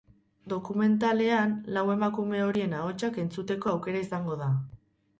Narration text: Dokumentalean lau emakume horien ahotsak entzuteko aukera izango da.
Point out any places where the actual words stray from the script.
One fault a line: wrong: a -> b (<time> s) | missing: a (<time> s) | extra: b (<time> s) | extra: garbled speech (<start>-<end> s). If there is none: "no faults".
no faults